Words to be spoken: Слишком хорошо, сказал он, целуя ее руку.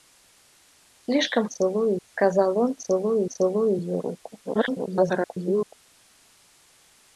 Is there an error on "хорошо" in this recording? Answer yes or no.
yes